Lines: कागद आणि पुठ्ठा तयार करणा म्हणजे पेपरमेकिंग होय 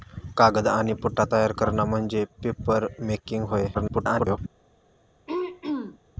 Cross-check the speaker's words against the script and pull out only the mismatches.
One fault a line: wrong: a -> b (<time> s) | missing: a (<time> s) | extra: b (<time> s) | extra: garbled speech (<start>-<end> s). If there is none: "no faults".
extra: garbled speech (3.7-4.4 s)